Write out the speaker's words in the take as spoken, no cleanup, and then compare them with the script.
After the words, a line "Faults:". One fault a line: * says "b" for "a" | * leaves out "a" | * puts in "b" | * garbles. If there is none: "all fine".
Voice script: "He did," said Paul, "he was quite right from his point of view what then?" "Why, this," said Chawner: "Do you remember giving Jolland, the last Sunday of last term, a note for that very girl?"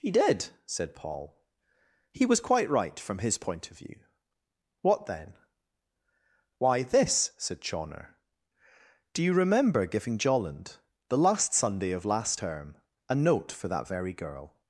"He did," said Paul, "he was quite right from his point of view what then?" "Why, this," said Chawner: "Do you remember giving Jolland, the last Sunday of last term, a note for that very girl?"
Faults:
all fine